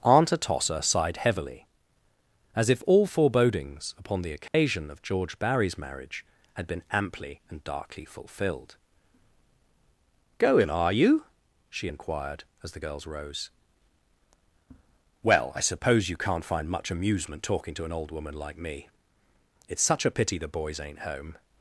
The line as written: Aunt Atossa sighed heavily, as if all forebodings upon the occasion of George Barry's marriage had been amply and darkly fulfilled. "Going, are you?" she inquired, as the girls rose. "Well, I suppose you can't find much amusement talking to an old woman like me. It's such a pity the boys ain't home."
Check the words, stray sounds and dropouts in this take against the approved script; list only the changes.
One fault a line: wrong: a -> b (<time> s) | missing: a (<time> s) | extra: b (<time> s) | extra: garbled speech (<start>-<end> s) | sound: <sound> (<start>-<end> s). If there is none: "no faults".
sound: dropout (4.5-4.5 s)